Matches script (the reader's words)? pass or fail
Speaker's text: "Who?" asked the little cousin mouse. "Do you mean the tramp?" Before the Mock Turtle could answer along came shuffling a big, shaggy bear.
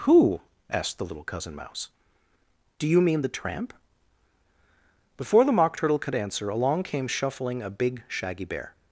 pass